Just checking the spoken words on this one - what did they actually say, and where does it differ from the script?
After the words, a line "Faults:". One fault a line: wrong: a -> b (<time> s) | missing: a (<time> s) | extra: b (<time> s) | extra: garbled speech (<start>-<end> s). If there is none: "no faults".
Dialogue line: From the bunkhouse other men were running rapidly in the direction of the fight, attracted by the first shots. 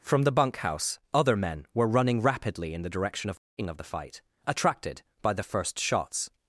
From the bunkhouse other men were running rapidly in the direction of of the fight, attracted by the first shots.
Faults:
extra: of (3.6 s)